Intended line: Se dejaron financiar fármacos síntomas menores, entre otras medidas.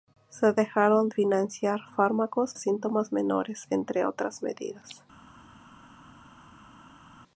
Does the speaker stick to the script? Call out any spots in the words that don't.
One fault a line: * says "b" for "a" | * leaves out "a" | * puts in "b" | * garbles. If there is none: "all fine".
all fine